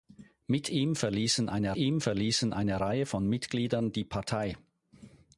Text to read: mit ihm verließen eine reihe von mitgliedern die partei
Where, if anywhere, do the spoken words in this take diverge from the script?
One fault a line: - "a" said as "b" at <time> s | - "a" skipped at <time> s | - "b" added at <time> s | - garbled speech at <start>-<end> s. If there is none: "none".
- "ihm verließen eine" added at 1.7 s